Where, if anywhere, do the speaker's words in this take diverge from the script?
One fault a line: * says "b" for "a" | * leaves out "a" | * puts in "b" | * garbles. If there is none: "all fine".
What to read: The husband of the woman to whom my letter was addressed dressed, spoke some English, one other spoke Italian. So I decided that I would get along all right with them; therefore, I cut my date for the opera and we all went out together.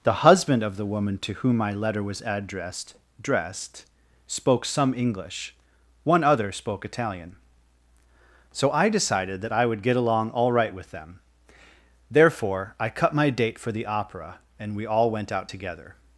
all fine